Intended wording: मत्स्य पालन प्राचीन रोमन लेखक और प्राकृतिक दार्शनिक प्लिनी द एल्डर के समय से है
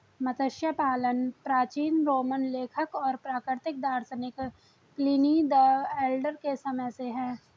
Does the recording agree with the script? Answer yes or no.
yes